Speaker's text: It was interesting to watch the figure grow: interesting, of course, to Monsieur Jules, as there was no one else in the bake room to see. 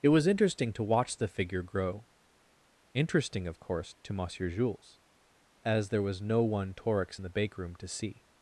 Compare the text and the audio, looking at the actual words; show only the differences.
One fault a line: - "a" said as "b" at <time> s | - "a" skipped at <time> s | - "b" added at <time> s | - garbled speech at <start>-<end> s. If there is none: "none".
- "else" said as "torix" at 6.7 s